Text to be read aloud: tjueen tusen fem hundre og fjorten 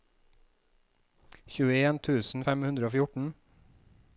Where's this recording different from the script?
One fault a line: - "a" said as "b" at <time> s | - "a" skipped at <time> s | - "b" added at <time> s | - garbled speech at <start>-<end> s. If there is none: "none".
none